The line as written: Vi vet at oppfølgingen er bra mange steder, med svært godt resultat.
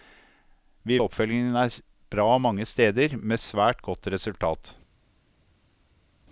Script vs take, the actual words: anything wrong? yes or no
yes